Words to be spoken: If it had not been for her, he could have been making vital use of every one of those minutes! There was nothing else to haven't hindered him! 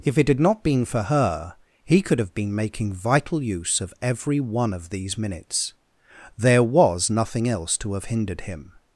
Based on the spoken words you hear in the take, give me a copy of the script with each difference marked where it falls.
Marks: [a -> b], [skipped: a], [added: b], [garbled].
If it had not been for her, he could have been making vital use of every one of [those -> these] minutes! There was nothing else to [haven't -> have] hindered him!